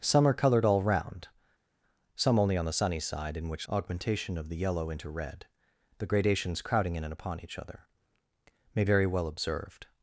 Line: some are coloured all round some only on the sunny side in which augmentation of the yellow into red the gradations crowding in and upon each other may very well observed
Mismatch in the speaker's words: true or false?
false